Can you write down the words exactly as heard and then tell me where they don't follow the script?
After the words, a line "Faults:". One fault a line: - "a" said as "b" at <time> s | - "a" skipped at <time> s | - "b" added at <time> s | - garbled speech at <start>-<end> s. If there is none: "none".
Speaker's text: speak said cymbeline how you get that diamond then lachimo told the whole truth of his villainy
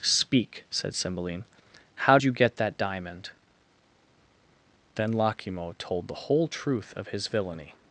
speak said cymbeline how you get that diamond then lachimo told the whole truth of his villainy
Faults:
none